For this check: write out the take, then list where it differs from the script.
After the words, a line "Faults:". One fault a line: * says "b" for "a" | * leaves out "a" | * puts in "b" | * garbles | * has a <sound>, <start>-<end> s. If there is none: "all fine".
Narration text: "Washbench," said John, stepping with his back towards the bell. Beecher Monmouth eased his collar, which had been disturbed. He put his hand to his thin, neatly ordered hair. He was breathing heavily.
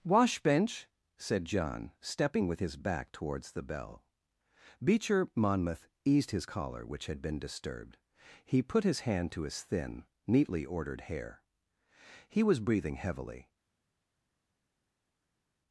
"Washbench," said John, stepping with his back towards the bell. Beecher Monmouth eased his collar, which had been disturbed. He put his hand to his thin, neatly ordered hair. He was breathing heavily.
Faults:
all fine